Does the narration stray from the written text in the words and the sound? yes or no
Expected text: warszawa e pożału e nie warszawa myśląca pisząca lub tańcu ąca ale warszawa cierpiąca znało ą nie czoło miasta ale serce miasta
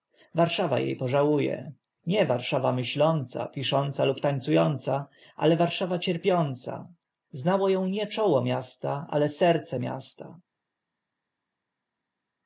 no